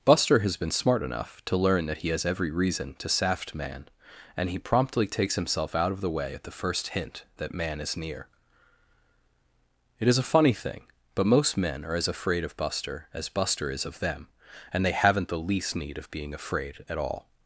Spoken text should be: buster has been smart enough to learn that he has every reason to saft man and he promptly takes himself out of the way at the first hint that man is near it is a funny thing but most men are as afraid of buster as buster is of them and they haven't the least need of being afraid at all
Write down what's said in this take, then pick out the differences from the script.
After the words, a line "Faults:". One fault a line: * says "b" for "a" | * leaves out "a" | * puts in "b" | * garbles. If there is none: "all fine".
buster has been smart enough to learn that he has every reason to saft man and he promptly takes himself out of the way at the first hint that man is near it is a funny thing but most men are as afraid of buster as buster is of them and they haven't the least need of being afraid at all
Faults:
all fine